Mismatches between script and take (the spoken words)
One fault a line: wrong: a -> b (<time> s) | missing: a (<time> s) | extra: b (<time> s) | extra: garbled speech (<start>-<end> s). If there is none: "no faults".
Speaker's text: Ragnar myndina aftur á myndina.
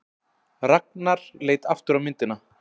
wrong: myndina -> leit (1.5 s)